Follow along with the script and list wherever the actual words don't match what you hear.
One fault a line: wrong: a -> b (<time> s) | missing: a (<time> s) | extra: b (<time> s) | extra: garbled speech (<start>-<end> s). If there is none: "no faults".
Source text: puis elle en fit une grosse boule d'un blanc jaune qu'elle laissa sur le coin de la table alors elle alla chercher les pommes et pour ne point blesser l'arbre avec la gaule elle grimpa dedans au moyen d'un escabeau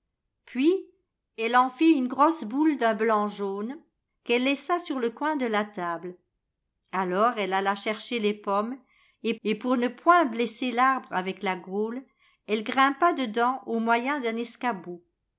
extra: et (9.4 s)